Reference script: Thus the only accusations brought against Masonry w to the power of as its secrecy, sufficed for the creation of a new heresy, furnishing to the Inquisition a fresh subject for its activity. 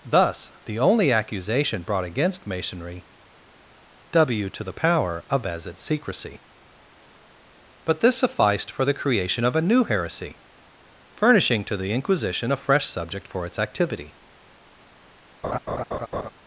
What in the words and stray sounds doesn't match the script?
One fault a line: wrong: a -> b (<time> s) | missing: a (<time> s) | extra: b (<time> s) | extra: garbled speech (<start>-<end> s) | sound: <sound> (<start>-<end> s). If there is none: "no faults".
wrong: accusations -> accusation (1.1 s)
extra: but this (7.8 s)
sound: laugh (15.4-16.3 s)